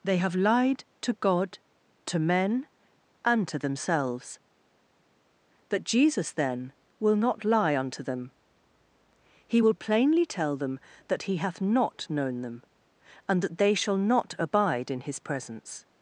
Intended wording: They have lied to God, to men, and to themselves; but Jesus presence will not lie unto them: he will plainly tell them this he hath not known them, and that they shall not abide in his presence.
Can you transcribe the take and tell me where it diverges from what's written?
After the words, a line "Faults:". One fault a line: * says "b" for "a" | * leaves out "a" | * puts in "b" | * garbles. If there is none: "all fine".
They have lied to God, to men, and to themselves; but Jesus then will not lie unto them: he will plainly tell them that he hath not known them, and that they shall not abide in his presence.
Faults:
* says "then" for "presence"
* says "that" for "this"